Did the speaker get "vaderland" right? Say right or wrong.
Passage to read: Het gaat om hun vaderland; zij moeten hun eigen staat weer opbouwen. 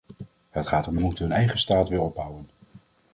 wrong